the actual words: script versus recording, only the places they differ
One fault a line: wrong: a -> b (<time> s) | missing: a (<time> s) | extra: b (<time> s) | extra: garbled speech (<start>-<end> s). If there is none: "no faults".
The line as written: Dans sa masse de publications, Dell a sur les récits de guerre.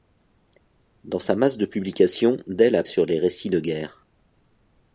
no faults